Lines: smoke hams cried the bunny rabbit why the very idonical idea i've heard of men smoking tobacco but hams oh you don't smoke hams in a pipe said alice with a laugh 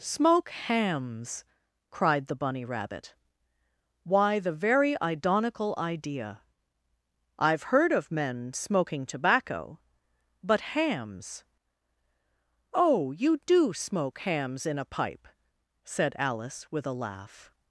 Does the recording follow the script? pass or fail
fail